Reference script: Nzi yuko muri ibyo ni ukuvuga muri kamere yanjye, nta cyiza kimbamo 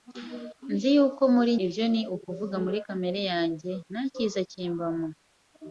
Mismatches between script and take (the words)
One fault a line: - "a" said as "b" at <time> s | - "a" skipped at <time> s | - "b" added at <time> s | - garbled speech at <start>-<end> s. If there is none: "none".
none